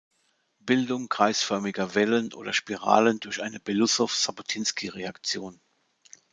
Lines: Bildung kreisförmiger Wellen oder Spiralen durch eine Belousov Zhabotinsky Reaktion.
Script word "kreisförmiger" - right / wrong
right